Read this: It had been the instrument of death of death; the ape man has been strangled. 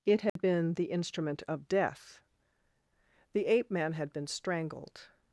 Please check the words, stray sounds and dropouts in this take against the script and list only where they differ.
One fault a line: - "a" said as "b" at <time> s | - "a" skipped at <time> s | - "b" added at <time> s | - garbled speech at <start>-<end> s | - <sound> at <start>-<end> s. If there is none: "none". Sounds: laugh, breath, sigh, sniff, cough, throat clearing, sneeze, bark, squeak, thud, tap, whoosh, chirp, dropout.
- dropout at 0.3-0.4 s
- "of death" skipped at 2.2 s
- "has" said as "had" at 3.9 s